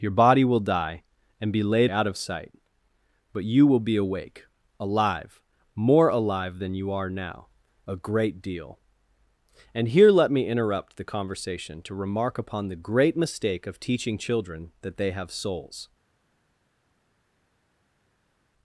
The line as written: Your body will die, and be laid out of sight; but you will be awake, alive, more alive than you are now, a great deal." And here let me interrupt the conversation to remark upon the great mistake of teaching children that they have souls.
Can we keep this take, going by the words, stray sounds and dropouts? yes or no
yes